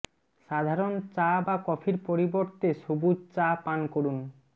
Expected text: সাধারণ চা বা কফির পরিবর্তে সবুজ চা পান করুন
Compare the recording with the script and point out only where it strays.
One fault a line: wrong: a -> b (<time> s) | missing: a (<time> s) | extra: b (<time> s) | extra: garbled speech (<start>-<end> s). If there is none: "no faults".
no faults